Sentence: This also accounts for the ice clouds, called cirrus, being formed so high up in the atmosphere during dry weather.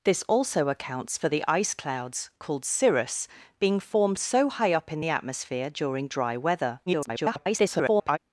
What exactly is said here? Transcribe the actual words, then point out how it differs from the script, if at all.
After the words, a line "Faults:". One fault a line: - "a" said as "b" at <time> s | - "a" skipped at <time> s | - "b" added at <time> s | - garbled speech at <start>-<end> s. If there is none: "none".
This also accounts for the ice clouds, called cirrus, being formed so high up in the atmosphere during dry weather. [garbled]
Faults:
- garbled speech at 6.9-8.2 s